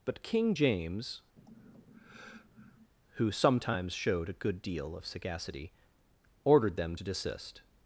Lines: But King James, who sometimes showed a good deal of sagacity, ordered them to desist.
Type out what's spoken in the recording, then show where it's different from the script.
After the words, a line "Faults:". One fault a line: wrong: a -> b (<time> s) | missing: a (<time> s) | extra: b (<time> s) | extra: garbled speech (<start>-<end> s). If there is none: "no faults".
But King James, who sometimes showed a good deal of sagacity, ordered them to desist.
Faults:
no faults